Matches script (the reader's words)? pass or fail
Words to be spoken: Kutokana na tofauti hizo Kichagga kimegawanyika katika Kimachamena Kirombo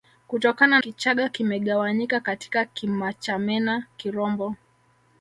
fail